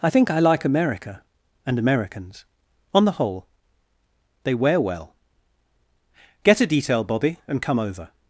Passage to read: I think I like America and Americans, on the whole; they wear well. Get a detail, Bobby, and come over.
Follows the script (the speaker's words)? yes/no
yes